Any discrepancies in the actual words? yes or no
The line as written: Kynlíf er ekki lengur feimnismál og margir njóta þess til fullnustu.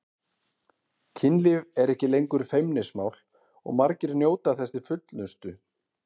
no